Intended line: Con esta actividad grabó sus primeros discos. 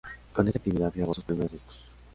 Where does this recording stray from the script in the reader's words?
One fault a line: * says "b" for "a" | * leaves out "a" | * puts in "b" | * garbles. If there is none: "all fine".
all fine